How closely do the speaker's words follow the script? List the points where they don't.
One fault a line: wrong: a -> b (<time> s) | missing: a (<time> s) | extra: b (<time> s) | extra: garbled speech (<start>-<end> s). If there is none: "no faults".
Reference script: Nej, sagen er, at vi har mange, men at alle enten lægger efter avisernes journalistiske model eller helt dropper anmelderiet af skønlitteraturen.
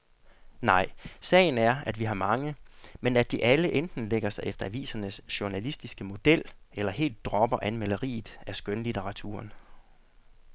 extra: de (3.3 s)
extra: sig (4.3 s)